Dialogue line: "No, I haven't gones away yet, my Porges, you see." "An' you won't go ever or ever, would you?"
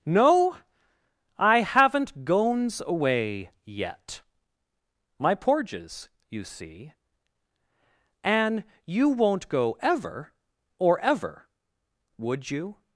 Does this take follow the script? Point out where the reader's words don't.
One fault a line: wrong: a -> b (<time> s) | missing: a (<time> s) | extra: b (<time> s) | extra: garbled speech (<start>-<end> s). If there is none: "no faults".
no faults